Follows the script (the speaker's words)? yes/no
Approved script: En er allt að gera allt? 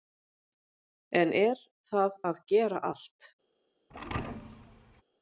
no